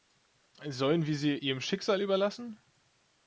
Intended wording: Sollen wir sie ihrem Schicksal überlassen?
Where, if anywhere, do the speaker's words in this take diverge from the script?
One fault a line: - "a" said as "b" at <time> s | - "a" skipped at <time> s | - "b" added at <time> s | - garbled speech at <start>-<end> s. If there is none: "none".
none